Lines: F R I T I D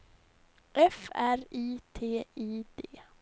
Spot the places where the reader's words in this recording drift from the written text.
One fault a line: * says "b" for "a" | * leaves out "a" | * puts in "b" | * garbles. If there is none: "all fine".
all fine